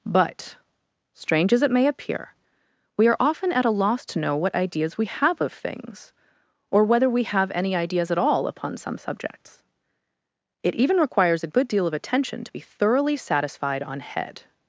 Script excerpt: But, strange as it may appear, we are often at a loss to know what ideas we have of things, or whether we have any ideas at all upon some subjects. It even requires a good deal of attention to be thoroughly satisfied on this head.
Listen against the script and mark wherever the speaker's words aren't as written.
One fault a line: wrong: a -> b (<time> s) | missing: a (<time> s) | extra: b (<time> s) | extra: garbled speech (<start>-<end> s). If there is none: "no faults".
missing: this (14.0 s)